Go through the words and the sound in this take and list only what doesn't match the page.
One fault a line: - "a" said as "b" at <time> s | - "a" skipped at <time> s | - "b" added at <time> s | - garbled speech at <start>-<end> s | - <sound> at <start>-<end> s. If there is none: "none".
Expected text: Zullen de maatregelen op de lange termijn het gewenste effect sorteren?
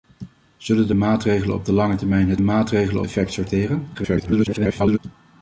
- "gewenste" said as "maatregelen" at 2.4 s
- garbled speech at 3.9-5.0 s